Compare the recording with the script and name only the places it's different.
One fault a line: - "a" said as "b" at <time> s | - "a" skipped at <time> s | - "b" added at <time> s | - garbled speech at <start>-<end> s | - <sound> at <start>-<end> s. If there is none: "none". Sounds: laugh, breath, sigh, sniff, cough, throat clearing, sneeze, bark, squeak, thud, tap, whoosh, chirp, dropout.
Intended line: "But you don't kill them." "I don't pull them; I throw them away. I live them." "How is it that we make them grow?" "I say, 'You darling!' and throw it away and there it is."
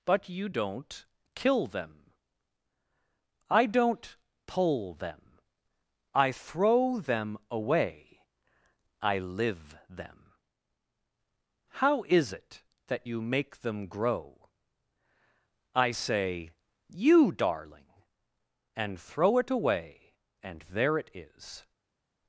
- "we" said as "you" at 13.1 s